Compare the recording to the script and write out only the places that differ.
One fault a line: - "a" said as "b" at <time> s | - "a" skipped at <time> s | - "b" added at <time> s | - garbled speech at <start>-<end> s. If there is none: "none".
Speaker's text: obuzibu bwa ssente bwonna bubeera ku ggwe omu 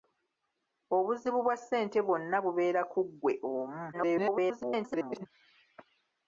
- garbled speech at 3.9-5.3 s